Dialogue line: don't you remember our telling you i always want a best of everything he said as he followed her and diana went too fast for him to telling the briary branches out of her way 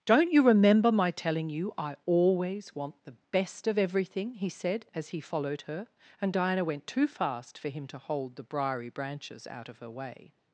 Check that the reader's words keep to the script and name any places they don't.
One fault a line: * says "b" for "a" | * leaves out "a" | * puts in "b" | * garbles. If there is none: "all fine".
* says "my" for "our"
* says "the" for "a"
* says "hold" for "telling"